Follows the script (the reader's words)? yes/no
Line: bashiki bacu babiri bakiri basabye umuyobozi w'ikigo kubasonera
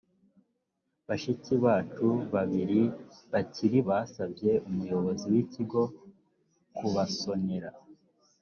yes